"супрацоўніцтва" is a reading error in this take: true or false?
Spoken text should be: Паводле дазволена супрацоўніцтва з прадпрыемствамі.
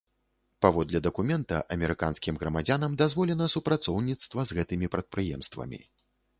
false